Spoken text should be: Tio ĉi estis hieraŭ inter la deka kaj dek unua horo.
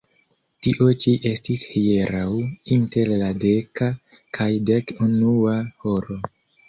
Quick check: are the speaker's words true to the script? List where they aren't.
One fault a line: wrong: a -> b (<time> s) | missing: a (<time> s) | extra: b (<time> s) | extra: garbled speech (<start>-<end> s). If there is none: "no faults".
no faults